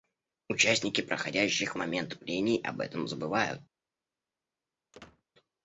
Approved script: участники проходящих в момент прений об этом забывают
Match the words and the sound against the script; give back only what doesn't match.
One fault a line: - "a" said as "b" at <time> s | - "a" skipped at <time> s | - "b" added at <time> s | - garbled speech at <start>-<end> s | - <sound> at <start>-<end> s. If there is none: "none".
- squeak at 4.9-5.2 s